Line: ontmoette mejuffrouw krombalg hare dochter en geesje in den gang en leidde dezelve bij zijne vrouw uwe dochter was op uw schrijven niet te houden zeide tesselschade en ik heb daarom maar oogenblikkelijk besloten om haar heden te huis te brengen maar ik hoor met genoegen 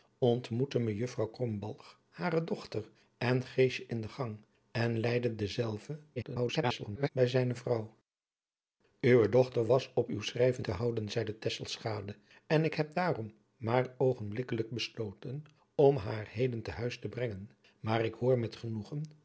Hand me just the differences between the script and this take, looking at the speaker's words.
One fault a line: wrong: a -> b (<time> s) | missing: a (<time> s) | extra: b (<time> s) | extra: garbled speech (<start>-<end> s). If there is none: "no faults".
extra: garbled speech (6.2-7.1 s)
missing: niet (10.6 s)